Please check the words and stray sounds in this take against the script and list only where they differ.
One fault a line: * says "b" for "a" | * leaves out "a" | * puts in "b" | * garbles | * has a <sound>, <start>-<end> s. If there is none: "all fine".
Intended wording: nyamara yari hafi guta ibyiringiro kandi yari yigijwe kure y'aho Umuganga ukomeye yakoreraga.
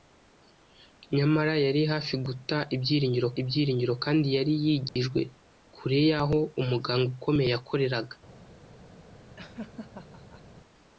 * puts in "ibyiringiro"
* has a dropout, 4.9-5.0 s
* has a laugh, 9.4-10.4 s